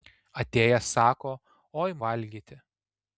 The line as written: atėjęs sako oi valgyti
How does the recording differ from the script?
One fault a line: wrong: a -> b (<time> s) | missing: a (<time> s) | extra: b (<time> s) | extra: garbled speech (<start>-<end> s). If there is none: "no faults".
no faults